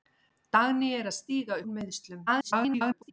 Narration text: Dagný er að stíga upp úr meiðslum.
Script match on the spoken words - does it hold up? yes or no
no